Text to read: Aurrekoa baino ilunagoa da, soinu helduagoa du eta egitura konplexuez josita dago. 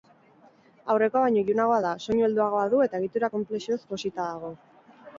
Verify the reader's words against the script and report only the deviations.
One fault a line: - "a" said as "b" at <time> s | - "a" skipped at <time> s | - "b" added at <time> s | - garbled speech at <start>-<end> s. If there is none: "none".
none